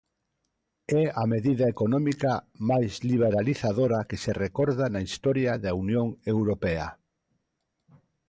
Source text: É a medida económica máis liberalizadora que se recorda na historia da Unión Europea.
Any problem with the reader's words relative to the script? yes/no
no